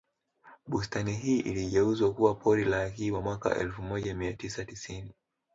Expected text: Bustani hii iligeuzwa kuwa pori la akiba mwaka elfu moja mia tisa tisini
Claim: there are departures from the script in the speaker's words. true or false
false